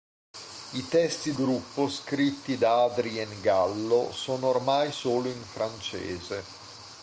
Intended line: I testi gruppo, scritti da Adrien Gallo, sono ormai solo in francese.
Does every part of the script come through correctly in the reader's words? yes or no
yes